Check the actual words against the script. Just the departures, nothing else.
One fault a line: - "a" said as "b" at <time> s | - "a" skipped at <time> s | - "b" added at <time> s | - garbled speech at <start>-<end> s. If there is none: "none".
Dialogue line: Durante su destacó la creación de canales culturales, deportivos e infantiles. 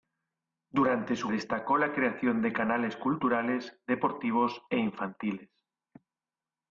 none